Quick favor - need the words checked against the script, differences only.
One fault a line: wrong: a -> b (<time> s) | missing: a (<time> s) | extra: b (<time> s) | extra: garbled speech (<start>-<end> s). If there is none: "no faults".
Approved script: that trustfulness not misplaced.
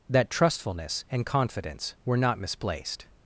extra: and confidence were (1.1 s)